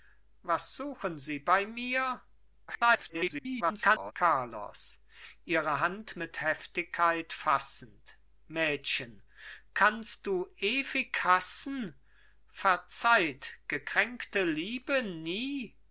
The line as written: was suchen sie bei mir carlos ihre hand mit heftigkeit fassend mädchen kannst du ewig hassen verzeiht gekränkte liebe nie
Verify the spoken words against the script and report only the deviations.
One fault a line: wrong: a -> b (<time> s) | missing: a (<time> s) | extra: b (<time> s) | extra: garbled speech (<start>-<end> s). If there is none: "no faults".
extra: garbled speech (2.7-4.1 s)